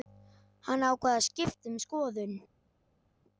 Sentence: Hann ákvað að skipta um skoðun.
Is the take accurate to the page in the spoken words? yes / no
yes